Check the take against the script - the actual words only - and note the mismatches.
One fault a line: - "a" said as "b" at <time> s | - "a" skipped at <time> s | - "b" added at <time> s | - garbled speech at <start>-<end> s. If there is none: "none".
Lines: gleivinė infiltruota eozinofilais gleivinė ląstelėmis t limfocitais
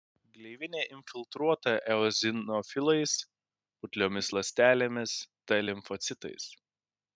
- "gleivinė" said as "putliomis" at 3.8 s